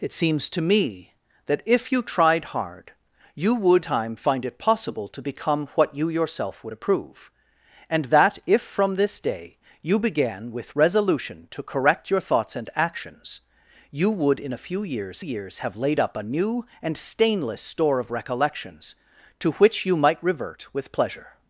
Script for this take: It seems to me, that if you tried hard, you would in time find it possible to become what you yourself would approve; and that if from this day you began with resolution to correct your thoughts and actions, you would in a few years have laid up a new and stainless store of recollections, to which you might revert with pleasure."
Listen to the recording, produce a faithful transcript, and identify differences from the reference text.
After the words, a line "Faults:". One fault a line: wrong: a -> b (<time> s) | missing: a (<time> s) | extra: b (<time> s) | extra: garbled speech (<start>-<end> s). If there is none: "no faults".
It seems to me, that if you tried hard, you would time find it possible to become what you yourself would approve; and that if from this day you began with resolution to correct your thoughts and actions, you would in a few years years have laid up a new and stainless store of recollections, to which you might revert with pleasure."
Faults:
missing: in (3.9 s)
extra: years (15.2 s)